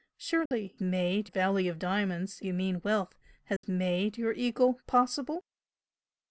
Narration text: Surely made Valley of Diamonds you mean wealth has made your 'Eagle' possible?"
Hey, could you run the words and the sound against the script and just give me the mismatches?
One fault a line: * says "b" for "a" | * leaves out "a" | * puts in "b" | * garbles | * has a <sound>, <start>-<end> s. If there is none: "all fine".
* has a dropout, 0.5-0.5 s
* has a dropout, 3.6-3.6 s